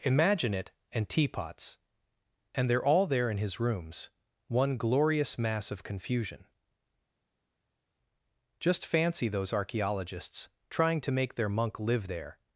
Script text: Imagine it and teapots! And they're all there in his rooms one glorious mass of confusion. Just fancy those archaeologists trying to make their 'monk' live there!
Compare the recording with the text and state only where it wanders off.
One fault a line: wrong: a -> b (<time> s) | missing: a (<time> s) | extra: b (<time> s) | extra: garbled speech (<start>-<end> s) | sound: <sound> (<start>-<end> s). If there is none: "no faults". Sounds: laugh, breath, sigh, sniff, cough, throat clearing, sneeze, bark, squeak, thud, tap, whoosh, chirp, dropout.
no faults